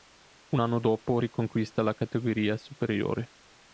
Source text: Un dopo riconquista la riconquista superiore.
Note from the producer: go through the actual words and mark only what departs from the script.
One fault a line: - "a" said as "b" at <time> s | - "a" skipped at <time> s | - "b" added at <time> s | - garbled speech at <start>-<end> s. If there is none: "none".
- "anno" added at 0.6 s
- "riconquista" said as "categoria" at 2.0 s